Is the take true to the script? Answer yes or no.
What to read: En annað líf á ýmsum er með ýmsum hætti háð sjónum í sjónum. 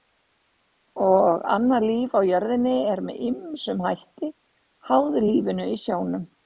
no